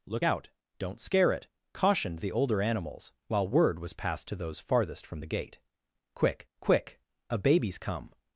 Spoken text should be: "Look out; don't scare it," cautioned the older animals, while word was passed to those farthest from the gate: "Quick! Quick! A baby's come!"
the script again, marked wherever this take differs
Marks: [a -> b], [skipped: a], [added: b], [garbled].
"Look out; don't scare it," cautioned the older animals, while word was passed to those farthest from the gate: "Quick! Quick! A baby's come!"